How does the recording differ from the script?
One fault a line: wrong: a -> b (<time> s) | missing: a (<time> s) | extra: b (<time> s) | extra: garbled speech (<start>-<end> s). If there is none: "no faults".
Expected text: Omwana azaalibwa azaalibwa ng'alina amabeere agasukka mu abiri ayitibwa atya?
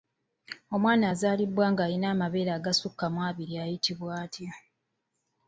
missing: azaalibwa (1.7 s)